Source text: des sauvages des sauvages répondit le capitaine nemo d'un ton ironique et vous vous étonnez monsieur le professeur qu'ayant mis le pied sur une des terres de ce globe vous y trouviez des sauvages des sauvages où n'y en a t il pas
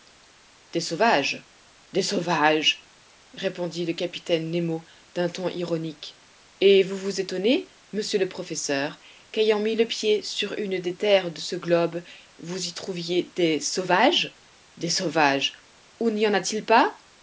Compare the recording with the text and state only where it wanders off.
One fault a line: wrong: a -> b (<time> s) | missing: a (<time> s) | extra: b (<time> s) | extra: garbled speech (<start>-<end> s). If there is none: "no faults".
no faults